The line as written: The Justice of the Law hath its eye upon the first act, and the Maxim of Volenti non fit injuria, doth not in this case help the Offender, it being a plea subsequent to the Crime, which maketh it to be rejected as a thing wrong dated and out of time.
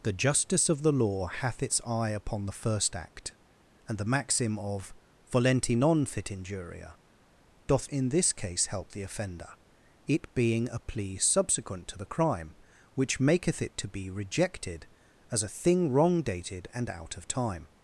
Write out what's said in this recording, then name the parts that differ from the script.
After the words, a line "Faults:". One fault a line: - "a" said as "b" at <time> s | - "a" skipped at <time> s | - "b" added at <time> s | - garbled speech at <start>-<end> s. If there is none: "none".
The Justice of the Law hath its eye upon the first act, and the Maxim of Volenti non fit injuria, doth in this case help the Offender, it being a plea subsequent to the Crime, which maketh it to be rejected as a thing wrong dated and out of time.
Faults:
- "not" skipped at 7.9 s